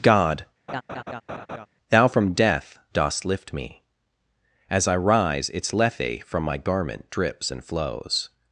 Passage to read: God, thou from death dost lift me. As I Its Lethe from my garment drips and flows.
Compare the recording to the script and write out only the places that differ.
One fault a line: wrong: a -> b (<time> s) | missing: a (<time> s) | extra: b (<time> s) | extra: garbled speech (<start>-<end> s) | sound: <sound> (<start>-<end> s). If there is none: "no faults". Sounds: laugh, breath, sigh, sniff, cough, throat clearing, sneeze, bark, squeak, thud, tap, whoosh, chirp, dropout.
sound: laugh (0.7-1.7 s)
extra: rise (5.0 s)